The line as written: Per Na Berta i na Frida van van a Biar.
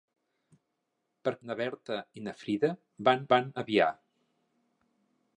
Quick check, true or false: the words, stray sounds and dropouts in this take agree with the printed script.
true